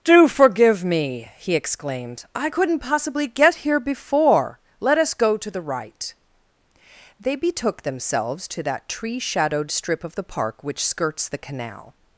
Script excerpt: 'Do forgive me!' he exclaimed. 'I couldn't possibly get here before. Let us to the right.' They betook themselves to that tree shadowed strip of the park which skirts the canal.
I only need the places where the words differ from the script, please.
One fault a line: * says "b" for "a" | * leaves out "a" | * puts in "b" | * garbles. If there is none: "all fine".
* puts in "go"